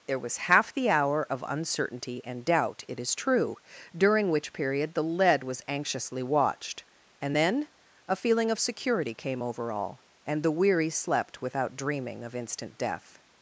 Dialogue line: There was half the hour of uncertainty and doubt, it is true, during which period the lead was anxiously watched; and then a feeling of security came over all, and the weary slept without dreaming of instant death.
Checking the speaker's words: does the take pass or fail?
pass